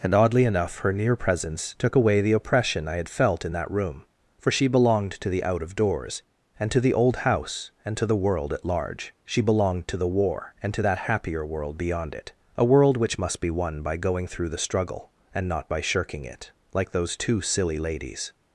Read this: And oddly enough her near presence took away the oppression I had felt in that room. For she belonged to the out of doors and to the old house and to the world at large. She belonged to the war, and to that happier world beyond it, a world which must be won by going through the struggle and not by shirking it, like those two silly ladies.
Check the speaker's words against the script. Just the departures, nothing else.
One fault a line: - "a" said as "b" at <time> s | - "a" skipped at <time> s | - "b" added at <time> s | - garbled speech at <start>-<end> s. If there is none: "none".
none